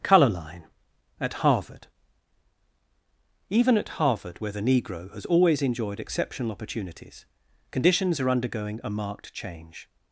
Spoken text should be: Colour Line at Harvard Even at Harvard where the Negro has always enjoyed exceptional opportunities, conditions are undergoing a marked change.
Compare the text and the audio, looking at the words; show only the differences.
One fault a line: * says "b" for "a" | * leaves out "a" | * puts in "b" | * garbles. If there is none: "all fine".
all fine